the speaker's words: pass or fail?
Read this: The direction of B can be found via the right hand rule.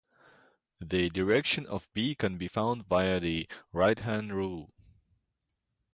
pass